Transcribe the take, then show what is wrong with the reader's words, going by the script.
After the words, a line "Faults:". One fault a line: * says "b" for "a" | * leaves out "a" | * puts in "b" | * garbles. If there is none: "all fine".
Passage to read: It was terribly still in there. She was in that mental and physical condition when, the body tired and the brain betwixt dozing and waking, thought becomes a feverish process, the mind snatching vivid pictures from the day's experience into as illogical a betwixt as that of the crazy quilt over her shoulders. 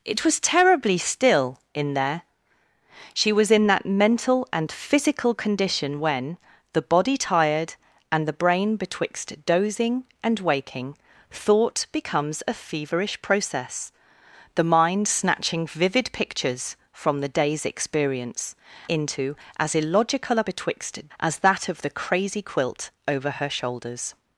It was terribly still in there. She was in that mental and physical condition when, the body tired and the brain betwixt dozing and waking, thought becomes a feverish process, the mind snatching vivid pictures from the day's experience into as illogical a betwixt as that of the crazy quilt over her shoulders.
Faults:
all fine